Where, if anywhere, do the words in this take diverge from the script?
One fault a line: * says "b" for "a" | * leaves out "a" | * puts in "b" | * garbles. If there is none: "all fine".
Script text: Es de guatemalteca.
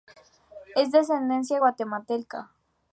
* puts in "ascendencia"